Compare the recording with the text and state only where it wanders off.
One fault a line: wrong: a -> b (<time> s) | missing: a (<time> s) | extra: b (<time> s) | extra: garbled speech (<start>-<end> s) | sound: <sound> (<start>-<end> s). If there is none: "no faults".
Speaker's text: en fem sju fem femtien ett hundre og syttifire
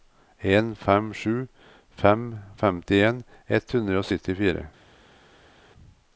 no faults